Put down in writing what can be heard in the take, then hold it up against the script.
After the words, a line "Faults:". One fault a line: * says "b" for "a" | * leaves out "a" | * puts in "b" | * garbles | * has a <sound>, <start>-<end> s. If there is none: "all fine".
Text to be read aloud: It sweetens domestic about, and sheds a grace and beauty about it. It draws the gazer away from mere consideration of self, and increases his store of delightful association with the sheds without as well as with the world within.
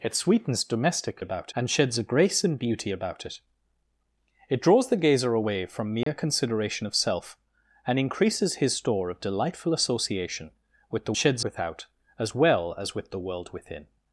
It sweetens domestic about, and sheds a grace and beauty about it. It draws the gazer away from mere consideration of self, and increases his store of delightful association with the sheds without as well as with the world within.
Faults:
* has a dropout, 6.0-6.1 s